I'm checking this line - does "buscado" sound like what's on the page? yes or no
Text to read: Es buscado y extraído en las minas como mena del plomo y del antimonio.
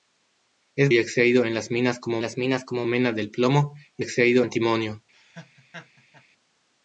no